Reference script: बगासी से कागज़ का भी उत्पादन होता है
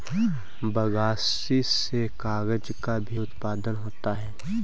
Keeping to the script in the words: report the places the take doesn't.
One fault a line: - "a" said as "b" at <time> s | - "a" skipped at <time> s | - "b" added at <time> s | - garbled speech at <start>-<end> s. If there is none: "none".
none